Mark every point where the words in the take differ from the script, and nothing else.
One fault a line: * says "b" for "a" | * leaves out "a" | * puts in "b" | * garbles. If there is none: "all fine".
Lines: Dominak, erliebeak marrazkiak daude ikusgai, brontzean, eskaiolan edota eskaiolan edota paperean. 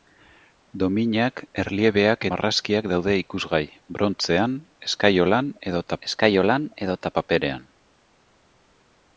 all fine